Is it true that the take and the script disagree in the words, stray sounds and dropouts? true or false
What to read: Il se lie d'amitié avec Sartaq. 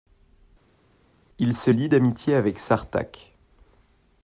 false